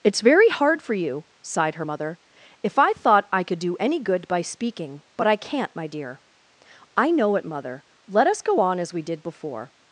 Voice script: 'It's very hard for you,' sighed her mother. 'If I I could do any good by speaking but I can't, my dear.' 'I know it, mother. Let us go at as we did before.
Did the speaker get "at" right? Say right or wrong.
wrong